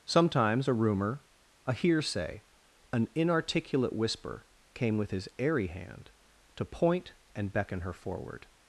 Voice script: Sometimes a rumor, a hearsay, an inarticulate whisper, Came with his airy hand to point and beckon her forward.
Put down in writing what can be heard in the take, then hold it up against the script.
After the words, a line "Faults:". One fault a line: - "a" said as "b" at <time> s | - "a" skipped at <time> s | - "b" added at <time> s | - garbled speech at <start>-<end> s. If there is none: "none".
Sometimes a rumor, a hearsay, an inarticulate whisper, Came with his airy hand to point and beckon her forward.
Faults:
none